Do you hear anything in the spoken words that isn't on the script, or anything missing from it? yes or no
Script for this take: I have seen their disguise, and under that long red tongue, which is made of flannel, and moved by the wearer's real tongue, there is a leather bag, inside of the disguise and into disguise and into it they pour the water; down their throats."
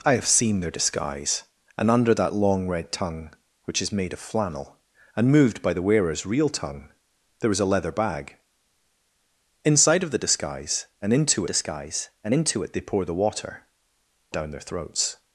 no